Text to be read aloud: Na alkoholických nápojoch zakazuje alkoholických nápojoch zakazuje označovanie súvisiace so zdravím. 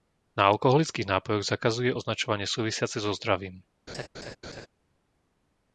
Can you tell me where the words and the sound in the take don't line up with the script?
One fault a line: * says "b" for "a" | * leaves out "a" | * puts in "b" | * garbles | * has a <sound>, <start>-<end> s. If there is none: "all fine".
* leaves out "alkoholických nápojoch zakazuje"
* has a laugh, 3.9-4.7 s